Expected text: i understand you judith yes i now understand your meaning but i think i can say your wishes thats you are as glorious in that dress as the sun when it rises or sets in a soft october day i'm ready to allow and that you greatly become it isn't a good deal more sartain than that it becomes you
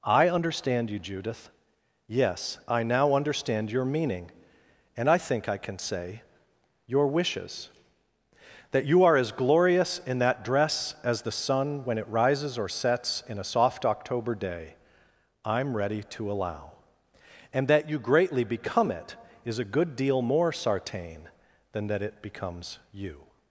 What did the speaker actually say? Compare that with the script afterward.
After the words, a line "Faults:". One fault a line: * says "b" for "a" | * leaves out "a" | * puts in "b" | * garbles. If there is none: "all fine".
i understand you judith yes i now understand your meaning and i think i can say your wishes that you are as glorious in that dress as the sun when it rises or sets in a soft october day i'm ready to allow and that you greatly become it is a good deal more sartain than that it becomes you
Faults:
* says "and" for "but"
* says "that" for "thats"
* says "is" for "isn't"